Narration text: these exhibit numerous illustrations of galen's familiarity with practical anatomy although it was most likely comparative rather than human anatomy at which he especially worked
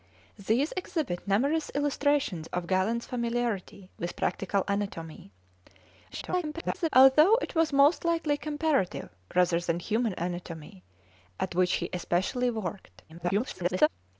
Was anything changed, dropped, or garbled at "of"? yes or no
no